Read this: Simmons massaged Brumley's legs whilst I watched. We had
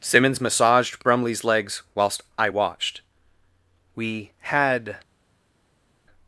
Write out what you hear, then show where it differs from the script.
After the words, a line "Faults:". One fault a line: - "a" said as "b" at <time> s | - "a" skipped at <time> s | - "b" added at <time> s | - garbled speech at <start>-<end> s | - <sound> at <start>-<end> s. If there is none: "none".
Simmons massaged Brumley's legs whilst I watched. We had
Faults:
none